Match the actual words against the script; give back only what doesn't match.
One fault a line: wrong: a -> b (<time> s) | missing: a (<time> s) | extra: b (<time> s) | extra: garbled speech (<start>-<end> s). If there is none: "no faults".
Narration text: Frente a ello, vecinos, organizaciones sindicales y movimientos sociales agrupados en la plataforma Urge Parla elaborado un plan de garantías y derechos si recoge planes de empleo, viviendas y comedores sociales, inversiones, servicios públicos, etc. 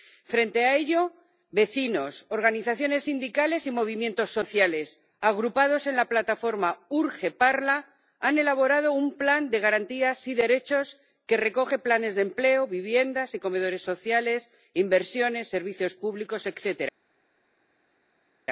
extra: han (8.2 s)
wrong: si -> que (11.2 s)